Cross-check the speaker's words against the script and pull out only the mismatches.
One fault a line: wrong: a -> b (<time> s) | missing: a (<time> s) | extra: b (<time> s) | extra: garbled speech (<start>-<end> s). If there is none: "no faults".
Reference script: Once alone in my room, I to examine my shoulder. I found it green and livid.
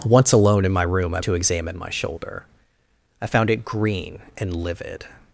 no faults